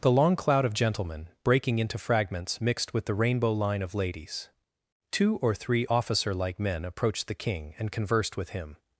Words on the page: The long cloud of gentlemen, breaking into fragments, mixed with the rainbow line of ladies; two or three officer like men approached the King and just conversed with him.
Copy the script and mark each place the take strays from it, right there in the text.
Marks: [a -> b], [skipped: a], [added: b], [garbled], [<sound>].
The long cloud of gentlemen, breaking into fragments, mixed with the rainbow line of ladies; two or three officer like men approached the King and [skipped: just] conversed with him.